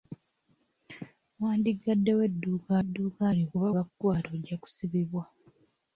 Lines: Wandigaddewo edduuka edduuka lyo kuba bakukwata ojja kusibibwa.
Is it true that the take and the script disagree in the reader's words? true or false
false